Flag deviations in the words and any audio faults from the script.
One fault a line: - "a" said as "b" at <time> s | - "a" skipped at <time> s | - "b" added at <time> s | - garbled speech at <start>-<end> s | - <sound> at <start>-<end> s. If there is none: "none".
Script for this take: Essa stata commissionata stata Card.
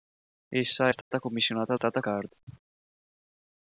- dropout at 1.0-1.1 s